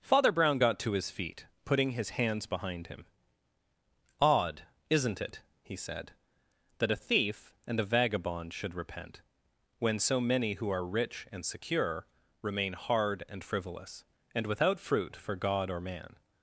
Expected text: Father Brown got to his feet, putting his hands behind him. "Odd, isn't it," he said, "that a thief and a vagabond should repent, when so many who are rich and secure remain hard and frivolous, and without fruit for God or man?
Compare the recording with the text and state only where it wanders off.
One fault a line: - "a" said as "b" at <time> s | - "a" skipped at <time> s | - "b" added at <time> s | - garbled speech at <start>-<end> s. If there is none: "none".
none